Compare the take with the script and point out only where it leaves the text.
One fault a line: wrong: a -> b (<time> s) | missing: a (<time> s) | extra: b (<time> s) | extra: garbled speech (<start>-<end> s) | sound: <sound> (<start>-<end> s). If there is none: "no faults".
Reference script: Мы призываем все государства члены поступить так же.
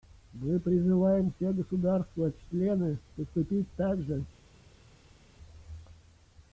no faults